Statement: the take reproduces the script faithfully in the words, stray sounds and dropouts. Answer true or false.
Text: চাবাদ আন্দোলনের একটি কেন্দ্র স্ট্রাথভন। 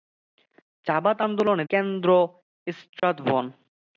false